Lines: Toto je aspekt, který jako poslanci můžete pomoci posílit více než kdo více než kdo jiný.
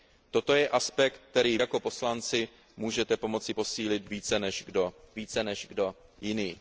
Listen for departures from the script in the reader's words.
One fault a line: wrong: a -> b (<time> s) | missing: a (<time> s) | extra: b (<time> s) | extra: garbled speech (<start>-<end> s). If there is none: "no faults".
no faults